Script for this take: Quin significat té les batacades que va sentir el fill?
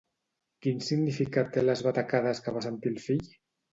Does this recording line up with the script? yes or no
yes